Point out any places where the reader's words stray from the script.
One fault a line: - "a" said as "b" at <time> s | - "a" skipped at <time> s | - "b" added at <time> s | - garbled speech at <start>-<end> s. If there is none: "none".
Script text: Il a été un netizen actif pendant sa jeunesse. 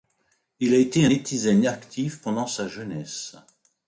none